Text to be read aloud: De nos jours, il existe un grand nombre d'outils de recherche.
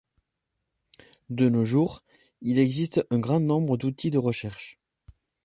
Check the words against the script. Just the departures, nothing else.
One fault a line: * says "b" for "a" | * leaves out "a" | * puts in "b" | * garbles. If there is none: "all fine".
all fine